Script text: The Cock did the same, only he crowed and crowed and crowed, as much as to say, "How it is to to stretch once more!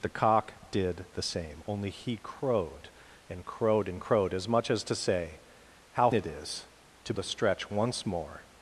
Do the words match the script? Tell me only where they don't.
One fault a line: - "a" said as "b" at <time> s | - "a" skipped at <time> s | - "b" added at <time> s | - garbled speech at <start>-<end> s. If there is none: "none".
none